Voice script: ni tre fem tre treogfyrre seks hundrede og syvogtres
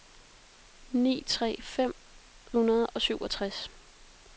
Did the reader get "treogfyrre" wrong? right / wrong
wrong